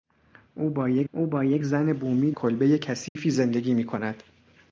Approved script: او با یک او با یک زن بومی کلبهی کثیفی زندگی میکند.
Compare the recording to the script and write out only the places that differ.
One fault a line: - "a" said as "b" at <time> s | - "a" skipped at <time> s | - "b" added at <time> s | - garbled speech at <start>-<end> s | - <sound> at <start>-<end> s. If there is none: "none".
- dropout at 3.1-3.2 s